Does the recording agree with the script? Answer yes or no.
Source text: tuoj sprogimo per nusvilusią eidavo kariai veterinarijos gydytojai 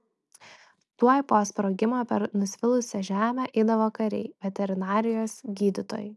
no